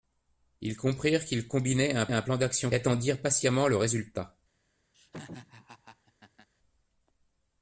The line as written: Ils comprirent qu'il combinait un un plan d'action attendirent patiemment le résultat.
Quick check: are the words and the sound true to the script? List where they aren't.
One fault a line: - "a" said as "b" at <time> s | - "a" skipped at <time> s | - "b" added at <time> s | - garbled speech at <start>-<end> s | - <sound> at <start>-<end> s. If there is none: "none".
- laugh at 4.9-6.5 s